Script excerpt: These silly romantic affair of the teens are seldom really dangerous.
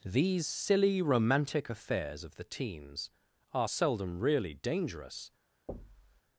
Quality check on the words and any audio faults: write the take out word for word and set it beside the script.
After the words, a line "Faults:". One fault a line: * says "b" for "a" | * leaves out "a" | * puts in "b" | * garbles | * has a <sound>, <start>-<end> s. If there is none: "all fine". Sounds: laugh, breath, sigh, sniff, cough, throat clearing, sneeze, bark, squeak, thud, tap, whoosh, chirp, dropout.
These silly romantic affairs of the teens are seldom really dangerous.
Faults:
* says "affairs" for "affair"
* has a thud, 5.7-6.2 s